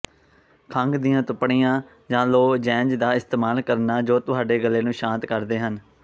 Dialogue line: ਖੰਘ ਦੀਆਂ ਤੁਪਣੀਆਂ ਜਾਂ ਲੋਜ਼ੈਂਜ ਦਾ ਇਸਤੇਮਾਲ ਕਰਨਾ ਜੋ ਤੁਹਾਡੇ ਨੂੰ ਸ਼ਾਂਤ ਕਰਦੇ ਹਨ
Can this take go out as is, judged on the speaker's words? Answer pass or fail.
fail